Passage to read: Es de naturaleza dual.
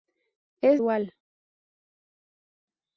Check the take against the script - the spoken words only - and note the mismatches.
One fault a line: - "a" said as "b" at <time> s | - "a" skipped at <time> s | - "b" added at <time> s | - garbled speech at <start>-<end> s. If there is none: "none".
- "de naturaleza" skipped at 0.8 s